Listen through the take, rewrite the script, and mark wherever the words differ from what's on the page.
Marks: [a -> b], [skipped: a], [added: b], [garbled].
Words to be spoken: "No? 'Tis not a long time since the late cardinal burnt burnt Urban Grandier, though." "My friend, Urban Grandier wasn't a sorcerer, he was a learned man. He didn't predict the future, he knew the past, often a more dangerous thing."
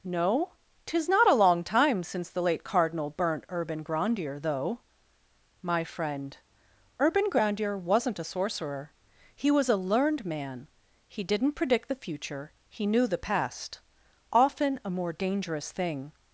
"No? 'Tis not a long time since the late cardinal burnt [skipped: burnt] Urban Grandier, though." "My friend, Urban Grandier wasn't a sorcerer, he was a learned man. He didn't predict the future, he knew the past, often a more dangerous thing."